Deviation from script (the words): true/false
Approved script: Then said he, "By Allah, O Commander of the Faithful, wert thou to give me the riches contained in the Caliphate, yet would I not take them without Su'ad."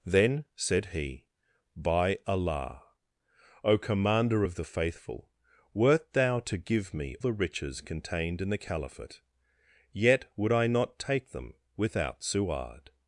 false